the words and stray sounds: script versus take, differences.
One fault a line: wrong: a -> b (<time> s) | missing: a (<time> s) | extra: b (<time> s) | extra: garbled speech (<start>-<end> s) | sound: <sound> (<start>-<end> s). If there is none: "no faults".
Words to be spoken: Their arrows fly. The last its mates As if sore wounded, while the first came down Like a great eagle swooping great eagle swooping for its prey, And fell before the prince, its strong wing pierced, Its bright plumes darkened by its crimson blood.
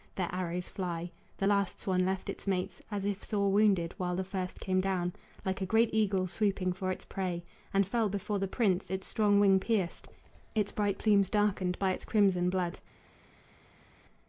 extra: swan left (1.8 s)
missing: great eagle swooping (6.7 s)